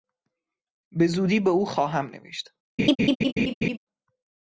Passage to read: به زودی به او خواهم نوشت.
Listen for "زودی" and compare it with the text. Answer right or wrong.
right